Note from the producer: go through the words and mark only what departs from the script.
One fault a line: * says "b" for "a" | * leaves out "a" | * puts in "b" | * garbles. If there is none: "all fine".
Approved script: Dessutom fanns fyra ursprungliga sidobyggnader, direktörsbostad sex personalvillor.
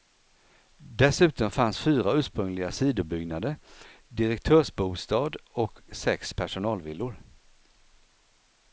* puts in "och"